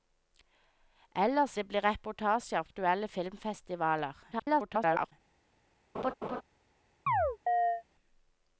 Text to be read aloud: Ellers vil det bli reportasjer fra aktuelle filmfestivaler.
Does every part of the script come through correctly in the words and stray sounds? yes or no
no